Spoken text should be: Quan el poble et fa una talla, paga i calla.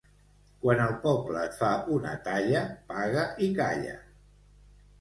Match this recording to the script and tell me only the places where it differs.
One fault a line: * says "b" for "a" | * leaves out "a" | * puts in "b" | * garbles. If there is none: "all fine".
all fine